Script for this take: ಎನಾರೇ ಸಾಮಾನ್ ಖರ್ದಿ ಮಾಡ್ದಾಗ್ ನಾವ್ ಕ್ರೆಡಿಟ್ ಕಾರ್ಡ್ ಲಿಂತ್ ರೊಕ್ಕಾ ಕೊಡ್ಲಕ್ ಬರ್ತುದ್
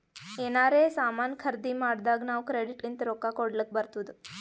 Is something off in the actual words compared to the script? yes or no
yes